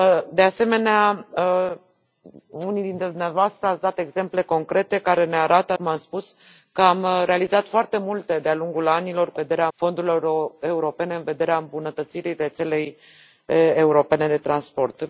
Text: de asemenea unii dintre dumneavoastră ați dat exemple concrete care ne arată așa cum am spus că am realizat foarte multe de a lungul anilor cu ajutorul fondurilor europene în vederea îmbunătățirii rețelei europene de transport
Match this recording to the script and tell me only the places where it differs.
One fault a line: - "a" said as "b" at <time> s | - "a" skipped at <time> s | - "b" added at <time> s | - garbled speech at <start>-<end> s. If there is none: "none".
- "așa" skipped at 5.7 s
- "ajutorul" said as "vederea" at 9.3 s